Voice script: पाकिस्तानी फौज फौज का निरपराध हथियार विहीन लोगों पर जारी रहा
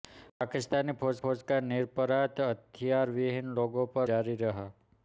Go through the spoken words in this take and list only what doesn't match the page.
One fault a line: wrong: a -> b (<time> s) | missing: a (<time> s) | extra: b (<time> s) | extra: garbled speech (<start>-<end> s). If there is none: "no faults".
no faults